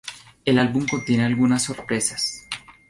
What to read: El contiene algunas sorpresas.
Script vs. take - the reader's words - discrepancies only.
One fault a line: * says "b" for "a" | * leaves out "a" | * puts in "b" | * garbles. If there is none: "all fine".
* puts in "álbum"